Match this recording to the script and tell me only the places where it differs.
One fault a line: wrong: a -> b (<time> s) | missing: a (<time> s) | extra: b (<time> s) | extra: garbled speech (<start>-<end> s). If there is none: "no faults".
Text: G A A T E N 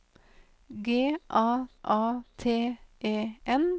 no faults